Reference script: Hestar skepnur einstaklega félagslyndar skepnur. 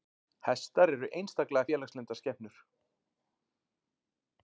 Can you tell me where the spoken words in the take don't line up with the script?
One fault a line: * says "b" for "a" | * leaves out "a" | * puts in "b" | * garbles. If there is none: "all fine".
* says "eru" for "skepnur"